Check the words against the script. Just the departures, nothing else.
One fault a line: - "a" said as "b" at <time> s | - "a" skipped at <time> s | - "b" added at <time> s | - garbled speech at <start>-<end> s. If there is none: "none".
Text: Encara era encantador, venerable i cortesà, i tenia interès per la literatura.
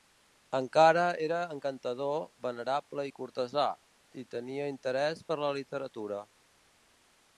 none